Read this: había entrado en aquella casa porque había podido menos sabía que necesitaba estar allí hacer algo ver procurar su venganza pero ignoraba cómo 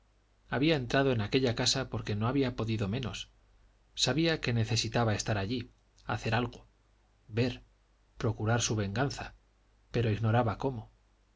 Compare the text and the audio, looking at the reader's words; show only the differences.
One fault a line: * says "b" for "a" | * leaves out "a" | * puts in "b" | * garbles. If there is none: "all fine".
* puts in "no"